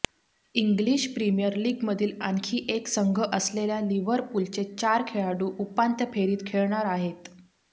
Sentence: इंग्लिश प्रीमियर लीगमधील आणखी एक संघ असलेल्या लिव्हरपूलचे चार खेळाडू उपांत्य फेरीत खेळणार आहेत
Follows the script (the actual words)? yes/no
yes